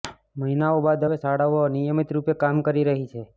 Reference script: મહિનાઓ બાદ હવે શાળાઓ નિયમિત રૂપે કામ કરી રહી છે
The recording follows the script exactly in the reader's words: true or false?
true